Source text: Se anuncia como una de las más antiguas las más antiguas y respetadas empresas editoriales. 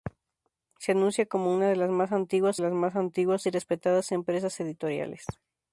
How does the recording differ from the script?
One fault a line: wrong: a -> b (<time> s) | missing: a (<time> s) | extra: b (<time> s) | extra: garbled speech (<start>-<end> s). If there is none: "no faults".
no faults